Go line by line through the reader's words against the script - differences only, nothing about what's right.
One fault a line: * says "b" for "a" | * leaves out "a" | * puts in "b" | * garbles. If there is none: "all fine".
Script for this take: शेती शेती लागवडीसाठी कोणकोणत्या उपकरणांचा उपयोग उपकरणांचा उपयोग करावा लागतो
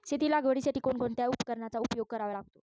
* leaves out "शेती"
* leaves out "उपकरणांचा उपयोग"